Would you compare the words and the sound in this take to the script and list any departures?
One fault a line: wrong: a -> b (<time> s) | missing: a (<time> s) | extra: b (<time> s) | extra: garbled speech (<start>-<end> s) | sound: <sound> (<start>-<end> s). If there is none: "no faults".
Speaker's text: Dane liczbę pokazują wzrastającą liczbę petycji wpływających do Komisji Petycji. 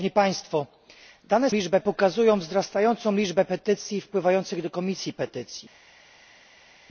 no faults